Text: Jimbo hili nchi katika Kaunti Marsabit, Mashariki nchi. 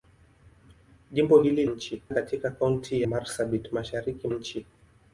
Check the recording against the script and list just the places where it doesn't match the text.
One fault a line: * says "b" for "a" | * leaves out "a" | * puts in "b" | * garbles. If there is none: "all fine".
all fine